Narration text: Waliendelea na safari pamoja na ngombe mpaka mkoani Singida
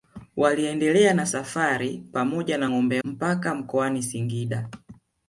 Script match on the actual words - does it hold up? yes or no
yes